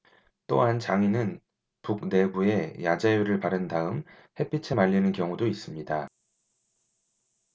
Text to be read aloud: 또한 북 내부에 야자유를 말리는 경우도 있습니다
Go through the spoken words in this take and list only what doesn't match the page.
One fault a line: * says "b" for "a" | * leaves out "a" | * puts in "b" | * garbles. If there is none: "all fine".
* puts in "장인은"
* puts in "바른 다음 햇빛에"